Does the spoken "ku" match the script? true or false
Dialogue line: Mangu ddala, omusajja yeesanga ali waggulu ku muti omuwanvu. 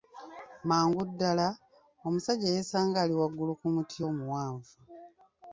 true